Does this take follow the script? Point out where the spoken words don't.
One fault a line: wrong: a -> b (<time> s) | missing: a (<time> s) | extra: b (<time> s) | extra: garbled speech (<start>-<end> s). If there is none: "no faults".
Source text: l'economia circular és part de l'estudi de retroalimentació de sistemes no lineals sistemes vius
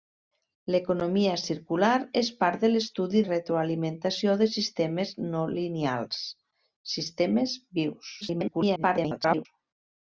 missing: de (3.2 s)
extra: garbled speech (8.2-9.5 s)